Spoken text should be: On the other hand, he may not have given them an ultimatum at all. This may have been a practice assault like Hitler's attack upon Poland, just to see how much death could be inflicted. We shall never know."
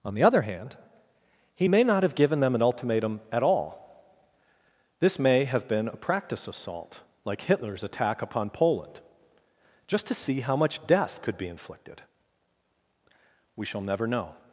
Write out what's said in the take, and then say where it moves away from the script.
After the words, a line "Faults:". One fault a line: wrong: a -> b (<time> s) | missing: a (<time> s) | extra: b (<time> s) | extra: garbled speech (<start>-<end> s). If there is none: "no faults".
On the other hand, he may not have given them an ultimatum at all. This may have been a practice assault like Hitler's attack upon Poland, just to see how much death could be inflicted. We shall never know."
Faults:
no faults